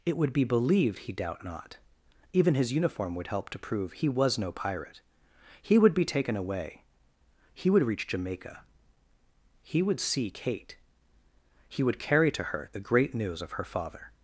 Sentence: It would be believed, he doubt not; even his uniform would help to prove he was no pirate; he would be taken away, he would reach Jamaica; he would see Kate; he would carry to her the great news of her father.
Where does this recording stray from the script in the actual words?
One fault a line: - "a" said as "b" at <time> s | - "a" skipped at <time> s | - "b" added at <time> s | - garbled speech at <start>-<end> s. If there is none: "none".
none